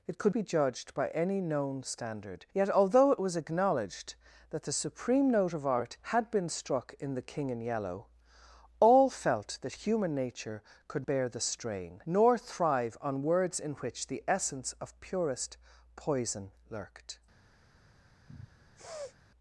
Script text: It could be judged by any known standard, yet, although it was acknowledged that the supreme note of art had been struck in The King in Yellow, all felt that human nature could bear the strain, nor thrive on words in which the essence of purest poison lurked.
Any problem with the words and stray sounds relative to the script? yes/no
yes